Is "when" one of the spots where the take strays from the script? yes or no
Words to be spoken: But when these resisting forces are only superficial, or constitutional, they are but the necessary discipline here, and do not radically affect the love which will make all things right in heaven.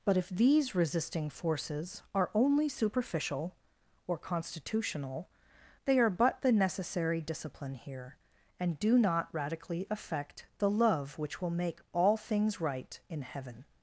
yes